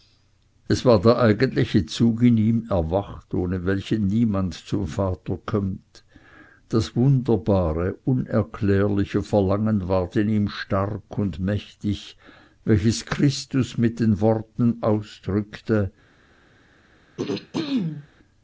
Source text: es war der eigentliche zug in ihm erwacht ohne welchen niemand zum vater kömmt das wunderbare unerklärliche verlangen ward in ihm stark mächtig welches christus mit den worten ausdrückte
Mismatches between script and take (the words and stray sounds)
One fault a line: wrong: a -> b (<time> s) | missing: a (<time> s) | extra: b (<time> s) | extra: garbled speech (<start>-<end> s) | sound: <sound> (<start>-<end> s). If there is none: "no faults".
extra: und (11.2 s)
sound: throat clearing (17.2-18.1 s)